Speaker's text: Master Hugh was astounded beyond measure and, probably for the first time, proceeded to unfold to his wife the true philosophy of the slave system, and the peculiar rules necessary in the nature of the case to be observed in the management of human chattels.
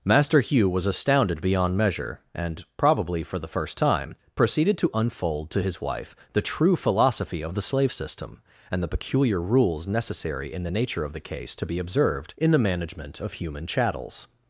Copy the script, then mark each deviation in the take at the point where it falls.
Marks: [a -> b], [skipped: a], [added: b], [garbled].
Master Hugh was astounded beyond measure and, probably for the first time, proceeded to unfold to his wife the true philosophy of the slave system, and the peculiar rules necessary in the nature of the case to be observed in the management of human chattels.